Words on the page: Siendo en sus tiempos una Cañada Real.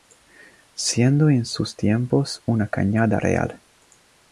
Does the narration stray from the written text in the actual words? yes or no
no